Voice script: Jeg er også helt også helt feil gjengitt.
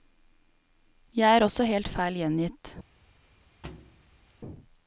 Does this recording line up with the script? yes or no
no